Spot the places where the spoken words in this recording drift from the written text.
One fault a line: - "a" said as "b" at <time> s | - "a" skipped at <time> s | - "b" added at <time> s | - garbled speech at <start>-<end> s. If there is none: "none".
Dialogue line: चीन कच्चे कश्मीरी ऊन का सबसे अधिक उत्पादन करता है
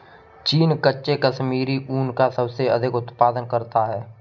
none